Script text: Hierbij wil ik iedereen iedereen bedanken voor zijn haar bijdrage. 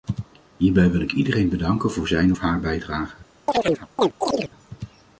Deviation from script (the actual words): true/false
true